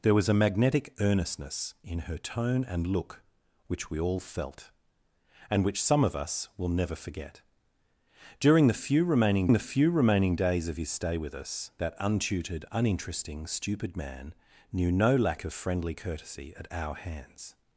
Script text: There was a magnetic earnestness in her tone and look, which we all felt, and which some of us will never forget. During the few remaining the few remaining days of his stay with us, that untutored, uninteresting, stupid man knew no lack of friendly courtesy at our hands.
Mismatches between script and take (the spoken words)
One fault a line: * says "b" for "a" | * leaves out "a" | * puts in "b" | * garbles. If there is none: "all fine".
all fine